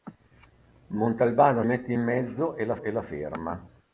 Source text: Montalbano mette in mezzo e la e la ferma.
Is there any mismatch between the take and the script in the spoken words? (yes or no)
no